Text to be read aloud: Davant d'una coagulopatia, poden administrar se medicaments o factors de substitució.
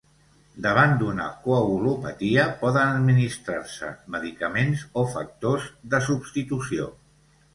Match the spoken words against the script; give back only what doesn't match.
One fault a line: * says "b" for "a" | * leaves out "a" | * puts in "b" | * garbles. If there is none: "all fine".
all fine